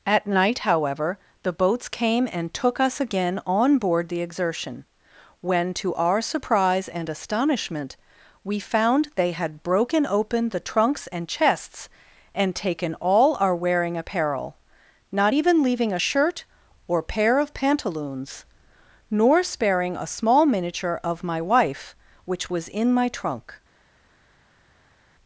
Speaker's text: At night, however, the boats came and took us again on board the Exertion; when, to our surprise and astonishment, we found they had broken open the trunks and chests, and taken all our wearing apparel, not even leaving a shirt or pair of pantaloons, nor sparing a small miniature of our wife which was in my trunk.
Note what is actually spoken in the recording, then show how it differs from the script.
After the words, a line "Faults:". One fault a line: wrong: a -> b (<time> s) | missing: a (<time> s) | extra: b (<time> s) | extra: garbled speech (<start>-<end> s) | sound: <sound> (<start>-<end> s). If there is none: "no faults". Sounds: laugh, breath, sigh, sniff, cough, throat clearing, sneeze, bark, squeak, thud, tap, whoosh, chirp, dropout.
At night, however, the boats came and took us again on board the Exertion; when, to our surprise and astonishment, we found they had broken open the trunks and chests, and taken all our wearing apparel, not even leaving a shirt or pair of pantaloons, nor sparing a small miniature of my wife which was in my trunk.
Faults:
wrong: our -> my (21.2 s)